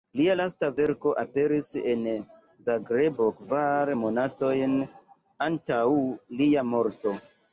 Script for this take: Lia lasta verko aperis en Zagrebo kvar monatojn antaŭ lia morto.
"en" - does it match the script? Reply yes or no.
yes